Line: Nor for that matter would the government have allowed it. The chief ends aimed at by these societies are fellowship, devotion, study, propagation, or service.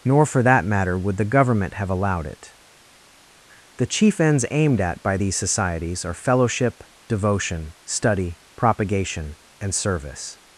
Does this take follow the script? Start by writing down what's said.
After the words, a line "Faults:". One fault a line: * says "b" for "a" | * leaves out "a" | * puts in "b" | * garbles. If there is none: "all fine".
Nor for that matter would the government have allowed it. The chief ends aimed at by these societies are fellowship, devotion, study, propagation, and service.
Faults:
* says "and" for "or"